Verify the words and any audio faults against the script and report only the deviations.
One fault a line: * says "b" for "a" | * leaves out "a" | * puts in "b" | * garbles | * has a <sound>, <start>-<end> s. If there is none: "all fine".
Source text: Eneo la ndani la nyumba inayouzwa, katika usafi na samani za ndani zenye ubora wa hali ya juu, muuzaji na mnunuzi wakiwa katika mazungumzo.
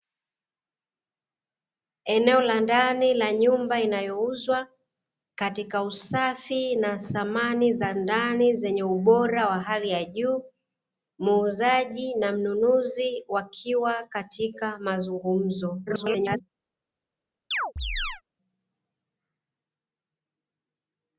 * garbles
* has a chirp, 17.5-18.2 s